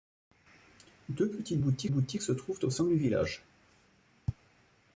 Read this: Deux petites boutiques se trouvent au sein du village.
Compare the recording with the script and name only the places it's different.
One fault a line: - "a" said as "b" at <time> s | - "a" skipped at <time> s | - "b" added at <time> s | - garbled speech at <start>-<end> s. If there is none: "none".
- "boutiques" added at 1.9 s